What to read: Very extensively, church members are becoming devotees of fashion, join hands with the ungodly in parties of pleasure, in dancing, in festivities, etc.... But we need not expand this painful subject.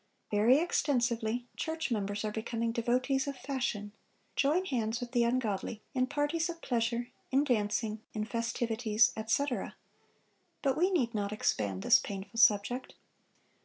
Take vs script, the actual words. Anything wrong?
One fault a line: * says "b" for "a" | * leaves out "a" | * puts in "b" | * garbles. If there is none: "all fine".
all fine